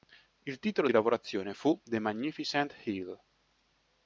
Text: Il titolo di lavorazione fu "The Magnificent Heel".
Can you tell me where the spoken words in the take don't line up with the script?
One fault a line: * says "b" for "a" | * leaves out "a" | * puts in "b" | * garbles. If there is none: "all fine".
all fine